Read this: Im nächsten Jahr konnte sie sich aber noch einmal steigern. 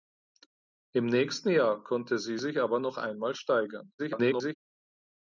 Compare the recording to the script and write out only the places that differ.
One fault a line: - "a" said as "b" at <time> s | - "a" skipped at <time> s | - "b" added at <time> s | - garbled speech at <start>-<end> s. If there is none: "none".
- garbled speech at 4.0-4.5 s